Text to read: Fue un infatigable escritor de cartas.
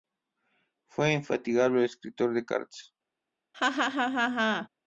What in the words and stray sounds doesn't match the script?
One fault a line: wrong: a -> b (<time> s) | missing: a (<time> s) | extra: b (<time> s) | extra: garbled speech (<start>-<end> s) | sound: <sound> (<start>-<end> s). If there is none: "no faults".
sound: laugh (3.5-4.7 s)